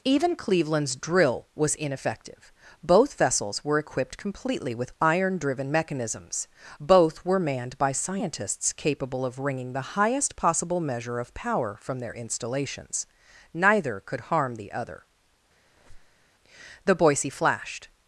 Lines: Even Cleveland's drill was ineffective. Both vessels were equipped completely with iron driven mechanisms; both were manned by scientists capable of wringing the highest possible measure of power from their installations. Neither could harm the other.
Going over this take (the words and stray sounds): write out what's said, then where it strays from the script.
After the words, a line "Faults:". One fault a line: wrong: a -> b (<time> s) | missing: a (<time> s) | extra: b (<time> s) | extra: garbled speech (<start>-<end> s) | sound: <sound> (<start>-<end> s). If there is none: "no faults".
Even Cleveland's drill was ineffective. Both vessels were equipped completely with iron driven mechanisms; both were manned by scientists capable of wringing the highest possible measure of power from their installations. Neither could harm the other. The Boise flashed
Faults:
sound: squeak (15.7-16.3 s)
extra: The Boise flashed (16.8 s)